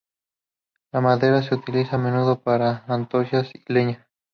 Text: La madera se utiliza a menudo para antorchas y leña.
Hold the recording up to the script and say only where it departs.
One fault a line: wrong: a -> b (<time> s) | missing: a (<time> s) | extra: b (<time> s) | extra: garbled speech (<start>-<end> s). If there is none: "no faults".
no faults